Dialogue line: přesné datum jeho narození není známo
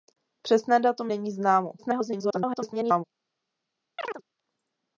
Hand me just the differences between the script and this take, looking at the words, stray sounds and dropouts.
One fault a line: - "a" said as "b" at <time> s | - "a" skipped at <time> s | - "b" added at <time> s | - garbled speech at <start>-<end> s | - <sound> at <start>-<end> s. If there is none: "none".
- "jeho narození" skipped at 1.1 s
- garbled speech at 1.8-3.0 s
- chirp at 4.0-4.2 s